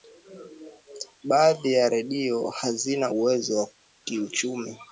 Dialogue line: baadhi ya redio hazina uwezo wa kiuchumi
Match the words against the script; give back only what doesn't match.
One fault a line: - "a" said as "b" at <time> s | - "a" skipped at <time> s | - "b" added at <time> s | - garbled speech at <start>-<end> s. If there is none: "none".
none